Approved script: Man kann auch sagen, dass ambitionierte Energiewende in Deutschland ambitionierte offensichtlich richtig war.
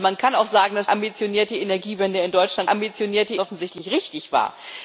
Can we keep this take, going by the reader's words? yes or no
yes